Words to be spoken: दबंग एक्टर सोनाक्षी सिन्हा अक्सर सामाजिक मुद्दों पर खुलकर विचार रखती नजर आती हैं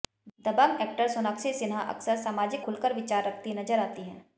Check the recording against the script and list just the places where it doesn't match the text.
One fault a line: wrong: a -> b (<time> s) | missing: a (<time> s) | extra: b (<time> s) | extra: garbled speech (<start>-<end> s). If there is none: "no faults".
missing: मुद्दों पर (2.6 s)